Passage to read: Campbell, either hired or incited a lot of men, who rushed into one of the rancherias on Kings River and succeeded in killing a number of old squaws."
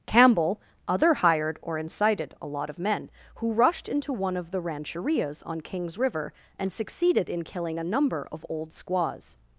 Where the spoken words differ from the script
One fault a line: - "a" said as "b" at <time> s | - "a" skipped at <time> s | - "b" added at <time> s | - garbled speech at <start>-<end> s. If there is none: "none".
- "either" said as "other" at 0.9 s